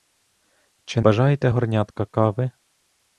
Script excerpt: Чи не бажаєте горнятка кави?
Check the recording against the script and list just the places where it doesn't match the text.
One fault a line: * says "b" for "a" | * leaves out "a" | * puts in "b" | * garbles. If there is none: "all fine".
* leaves out "не"